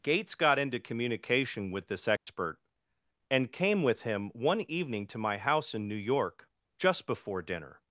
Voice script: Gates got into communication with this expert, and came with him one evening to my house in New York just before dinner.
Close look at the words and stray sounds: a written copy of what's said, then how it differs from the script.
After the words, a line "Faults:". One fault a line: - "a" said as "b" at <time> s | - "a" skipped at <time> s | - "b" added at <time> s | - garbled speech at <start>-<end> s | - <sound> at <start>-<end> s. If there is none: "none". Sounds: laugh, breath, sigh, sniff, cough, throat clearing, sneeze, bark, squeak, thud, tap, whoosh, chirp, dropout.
Gates got into communication with this expert, and came with him one evening to my house in New York just before dinner.
Faults:
- dropout at 2.2-2.3 s